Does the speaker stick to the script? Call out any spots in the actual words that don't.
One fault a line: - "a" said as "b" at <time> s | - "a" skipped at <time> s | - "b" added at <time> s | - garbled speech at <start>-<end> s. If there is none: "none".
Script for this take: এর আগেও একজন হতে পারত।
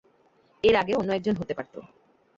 - "অন্য" added at 1.0 s